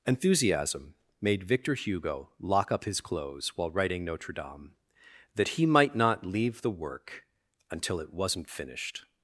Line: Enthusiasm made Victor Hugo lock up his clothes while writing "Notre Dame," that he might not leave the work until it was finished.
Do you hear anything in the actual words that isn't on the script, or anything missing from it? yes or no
yes